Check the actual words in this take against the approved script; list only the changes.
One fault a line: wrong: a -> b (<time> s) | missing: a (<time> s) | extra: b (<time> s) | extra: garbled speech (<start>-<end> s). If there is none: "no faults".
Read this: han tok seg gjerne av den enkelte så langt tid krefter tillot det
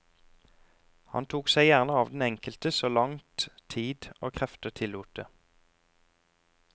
extra: og (4.2 s)